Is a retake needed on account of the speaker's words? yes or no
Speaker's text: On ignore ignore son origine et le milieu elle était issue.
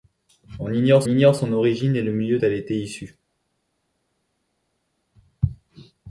no